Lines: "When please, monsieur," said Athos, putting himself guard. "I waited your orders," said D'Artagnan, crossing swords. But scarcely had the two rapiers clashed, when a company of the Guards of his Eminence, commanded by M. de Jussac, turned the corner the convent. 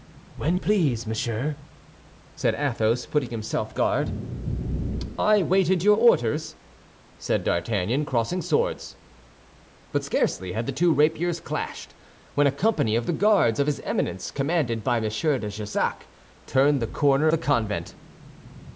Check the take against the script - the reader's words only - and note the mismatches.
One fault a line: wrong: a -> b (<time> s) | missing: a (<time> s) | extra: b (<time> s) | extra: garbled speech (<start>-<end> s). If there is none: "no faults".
no faults